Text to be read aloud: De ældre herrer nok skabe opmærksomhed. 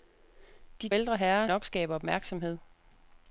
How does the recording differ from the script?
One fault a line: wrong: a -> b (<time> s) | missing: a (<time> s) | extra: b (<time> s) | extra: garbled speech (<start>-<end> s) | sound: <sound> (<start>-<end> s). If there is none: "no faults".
no faults